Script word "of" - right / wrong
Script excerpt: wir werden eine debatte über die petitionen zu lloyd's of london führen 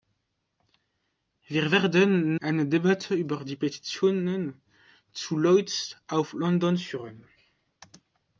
right